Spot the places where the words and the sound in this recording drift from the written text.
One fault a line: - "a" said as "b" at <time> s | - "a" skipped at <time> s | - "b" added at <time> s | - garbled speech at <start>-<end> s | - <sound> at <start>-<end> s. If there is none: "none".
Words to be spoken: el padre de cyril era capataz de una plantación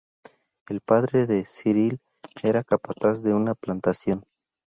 none